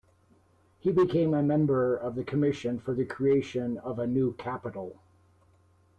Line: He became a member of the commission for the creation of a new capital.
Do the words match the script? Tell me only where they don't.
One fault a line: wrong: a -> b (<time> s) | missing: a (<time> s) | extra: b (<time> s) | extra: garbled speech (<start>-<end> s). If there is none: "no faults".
no faults